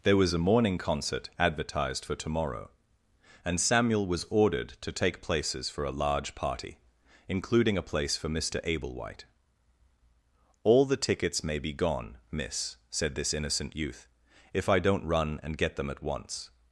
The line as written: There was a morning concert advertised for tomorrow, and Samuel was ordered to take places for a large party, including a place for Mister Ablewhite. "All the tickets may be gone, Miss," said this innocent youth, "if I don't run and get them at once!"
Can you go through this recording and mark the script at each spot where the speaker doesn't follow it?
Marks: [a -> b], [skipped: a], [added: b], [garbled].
There was a morning concert advertised for tomorrow, and Samuel was ordered to take places for a large party, including a place for Mister Ablewhite. "All the tickets may be gone, Miss," said this innocent youth, "if I don't run and get them at once!"